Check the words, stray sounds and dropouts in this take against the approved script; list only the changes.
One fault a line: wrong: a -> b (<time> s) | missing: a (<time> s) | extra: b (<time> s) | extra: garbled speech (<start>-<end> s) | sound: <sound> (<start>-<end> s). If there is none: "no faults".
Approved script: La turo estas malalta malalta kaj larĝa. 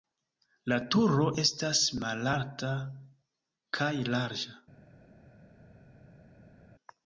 missing: malalta (2.7 s)